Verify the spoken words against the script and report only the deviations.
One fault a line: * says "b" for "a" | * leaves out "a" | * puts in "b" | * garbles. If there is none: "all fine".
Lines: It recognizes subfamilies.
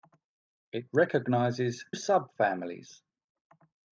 all fine